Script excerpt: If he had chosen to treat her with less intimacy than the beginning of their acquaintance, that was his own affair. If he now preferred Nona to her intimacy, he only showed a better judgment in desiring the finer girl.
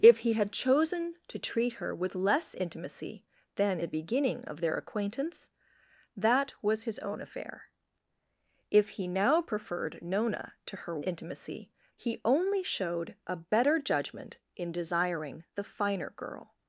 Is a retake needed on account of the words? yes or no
no